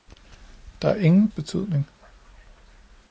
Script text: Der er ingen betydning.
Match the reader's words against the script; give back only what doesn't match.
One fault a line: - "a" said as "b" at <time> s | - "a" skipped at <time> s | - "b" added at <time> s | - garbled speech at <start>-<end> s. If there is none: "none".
none